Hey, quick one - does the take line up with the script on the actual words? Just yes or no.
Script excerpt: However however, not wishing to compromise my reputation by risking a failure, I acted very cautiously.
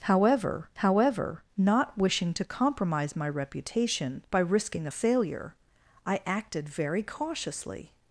yes